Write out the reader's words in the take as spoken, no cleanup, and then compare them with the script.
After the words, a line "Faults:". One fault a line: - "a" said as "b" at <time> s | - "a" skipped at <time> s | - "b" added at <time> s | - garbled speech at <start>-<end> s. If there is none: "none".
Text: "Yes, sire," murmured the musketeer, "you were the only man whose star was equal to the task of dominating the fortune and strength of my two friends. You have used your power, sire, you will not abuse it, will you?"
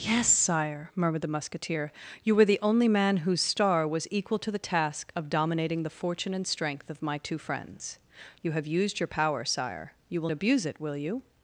"Yes, sire," murmured the musketeer, "you were the only man whose star was equal to the task of dominating the fortune and strength of my two friends. You have used your power, sire, you will abuse it, will you?"
Faults:
- "not" skipped at 10.3 s